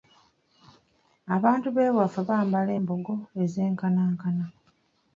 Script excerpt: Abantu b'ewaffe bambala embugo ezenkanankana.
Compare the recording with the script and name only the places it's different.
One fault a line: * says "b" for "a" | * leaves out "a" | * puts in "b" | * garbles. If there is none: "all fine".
all fine